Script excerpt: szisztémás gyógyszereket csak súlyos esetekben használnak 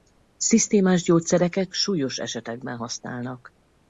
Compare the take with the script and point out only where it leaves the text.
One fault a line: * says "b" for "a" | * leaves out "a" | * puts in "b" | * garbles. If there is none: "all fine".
* leaves out "csak"